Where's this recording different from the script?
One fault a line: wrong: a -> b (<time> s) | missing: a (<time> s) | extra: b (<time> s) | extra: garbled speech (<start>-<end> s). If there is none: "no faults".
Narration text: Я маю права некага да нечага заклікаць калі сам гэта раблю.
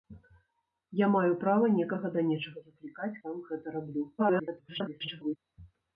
missing: калі (3.1 s)
extra: garbled speech (4.2-5.4 s)